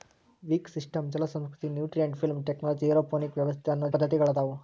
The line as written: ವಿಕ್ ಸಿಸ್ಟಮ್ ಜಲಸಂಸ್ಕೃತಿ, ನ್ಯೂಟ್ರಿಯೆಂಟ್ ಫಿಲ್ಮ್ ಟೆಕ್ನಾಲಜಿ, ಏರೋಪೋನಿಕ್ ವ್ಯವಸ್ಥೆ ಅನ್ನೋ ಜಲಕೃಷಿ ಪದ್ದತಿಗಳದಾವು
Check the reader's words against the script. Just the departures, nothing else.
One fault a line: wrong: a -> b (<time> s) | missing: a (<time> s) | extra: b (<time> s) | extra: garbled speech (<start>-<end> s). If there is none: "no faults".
missing: ಜಲಕೃಷಿ (3.9 s)